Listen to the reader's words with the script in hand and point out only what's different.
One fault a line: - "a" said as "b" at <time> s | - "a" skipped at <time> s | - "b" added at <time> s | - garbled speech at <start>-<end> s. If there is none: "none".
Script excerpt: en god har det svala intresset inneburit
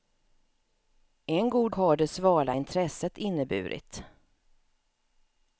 none